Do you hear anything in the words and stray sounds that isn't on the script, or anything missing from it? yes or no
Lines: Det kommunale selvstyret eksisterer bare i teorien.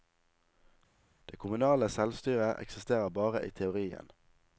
no